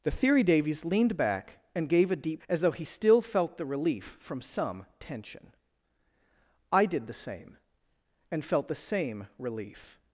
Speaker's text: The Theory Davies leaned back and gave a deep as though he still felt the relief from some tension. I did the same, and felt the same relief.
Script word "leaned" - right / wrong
right